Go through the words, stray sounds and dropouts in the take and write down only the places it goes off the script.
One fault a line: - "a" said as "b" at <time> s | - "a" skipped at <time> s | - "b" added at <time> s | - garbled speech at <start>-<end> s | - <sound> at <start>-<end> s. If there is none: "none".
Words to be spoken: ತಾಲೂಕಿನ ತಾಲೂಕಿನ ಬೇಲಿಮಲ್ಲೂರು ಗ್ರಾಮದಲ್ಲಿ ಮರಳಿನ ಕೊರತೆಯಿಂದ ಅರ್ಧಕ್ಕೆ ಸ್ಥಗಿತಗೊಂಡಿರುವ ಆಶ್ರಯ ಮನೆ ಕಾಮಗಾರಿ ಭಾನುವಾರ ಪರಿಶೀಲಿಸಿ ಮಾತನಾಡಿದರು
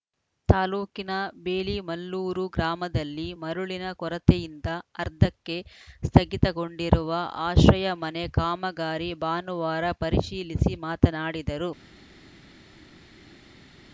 - "ತಾಲೂಕಿನ" skipped at 1.1 s